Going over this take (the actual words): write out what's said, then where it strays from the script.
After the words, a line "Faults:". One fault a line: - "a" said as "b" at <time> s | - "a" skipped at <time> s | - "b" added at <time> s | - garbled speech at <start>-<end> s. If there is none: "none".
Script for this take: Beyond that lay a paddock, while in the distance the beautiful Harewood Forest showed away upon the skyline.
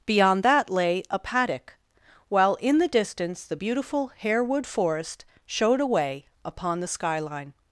Beyond that lay a paddock, while in the distance the beautiful Harewood Forest showed away upon the skyline.
Faults:
none